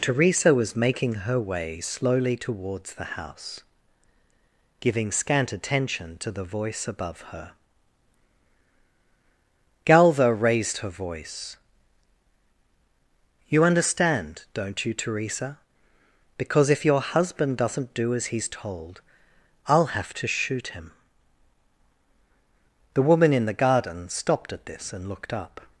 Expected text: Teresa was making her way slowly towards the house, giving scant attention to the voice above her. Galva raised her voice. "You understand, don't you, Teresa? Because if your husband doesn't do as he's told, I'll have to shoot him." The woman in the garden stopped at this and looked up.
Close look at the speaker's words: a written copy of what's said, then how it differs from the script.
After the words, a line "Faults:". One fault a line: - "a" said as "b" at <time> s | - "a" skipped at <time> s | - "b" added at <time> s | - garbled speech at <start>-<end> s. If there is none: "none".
Teresa was making her way slowly towards the house, giving scant attention to the voice above her. Galva raised her voice. "You understand, don't you, Teresa? Because if your husband doesn't do as he's told, I'll have to shoot him." The woman in the garden stopped at this and looked up.
Faults:
none